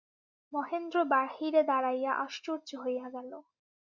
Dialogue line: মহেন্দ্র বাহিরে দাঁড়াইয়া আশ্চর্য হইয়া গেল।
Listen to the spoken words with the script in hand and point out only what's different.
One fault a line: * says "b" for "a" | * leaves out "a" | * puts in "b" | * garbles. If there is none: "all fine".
all fine